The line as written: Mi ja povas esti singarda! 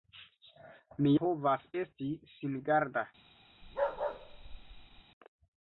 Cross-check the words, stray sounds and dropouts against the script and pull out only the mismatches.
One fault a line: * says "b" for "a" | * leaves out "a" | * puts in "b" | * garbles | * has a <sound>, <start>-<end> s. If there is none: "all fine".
* leaves out "ja"
* has a bark, 3.6-5.0 s